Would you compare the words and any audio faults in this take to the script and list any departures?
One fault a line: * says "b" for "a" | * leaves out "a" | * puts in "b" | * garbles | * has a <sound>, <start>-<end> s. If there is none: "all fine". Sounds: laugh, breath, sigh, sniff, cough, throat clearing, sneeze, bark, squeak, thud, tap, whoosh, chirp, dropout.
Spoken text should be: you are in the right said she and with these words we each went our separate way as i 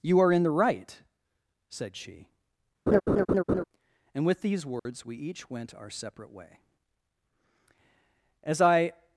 * has a laugh, 2.9-3.6 s
* has a dropout, 4.8-4.9 s